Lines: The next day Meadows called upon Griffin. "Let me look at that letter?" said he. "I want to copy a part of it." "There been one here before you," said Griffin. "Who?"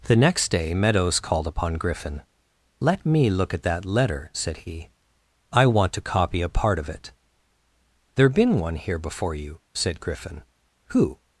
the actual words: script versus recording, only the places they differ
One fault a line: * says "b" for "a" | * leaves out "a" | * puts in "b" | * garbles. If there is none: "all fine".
all fine